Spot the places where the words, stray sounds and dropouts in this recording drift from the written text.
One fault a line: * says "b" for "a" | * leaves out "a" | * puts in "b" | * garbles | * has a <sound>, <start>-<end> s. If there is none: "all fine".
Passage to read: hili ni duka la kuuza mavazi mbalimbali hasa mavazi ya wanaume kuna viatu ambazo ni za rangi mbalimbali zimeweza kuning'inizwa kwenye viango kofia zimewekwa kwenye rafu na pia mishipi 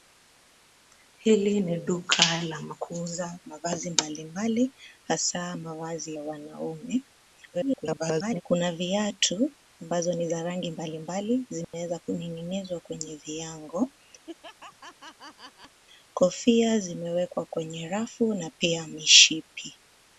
* garbles
* has a dropout, 11.6-11.7 s
* has a laugh, 14.3-15.8 s